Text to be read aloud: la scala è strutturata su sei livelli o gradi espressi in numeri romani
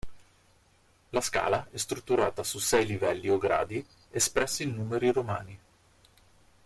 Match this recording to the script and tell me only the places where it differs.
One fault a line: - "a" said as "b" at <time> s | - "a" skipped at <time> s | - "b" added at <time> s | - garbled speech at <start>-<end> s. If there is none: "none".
none